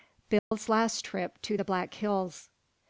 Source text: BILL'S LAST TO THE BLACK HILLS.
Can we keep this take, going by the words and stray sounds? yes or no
no